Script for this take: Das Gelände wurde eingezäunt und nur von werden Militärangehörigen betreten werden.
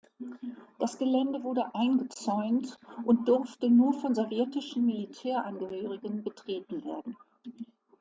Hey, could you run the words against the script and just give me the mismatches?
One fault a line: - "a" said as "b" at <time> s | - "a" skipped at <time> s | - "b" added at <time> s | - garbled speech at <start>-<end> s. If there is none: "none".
- "durfte" added at 3.3 s
- "werden" said as "sowjetischen" at 4.2 s